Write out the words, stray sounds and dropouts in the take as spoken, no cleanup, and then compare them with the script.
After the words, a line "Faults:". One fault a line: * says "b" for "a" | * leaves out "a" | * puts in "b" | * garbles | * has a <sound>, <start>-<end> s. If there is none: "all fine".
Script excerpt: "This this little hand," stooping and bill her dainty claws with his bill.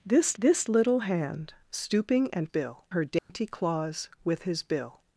"This this little hand," stooping and bill her dainty claws with his bill.
Faults:
* has a dropout, 3.2-3.3 s